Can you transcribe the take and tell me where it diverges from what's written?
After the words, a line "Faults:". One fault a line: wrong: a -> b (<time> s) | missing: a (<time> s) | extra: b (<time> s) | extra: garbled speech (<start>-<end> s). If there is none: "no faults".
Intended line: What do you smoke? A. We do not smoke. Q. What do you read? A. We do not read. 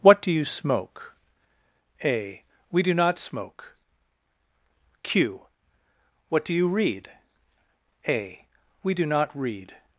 What do you smoke? A. We do not smoke. Q. What do you read? A. We do not read.
Faults:
no faults